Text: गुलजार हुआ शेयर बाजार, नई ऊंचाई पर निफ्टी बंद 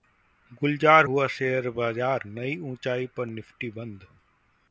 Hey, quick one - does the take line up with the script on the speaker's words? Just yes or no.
yes